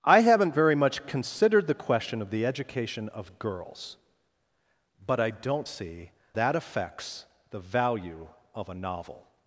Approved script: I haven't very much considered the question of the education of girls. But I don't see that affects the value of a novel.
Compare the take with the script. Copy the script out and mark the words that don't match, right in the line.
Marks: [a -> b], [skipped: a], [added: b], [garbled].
I haven't very much considered the question of the education of girls. But I don't see that affects the value of a novel.